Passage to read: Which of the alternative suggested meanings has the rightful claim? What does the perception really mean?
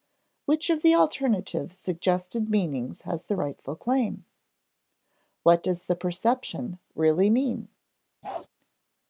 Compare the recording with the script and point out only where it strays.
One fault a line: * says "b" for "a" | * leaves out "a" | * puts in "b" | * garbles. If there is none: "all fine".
all fine